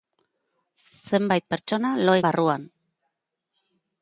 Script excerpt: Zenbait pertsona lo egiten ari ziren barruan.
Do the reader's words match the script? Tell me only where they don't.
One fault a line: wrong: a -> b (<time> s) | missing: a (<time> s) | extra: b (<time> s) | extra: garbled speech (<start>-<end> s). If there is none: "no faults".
missing: egiten ari ziren (2.2 s)